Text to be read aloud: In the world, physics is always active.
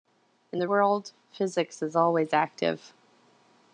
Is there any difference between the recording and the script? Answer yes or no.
no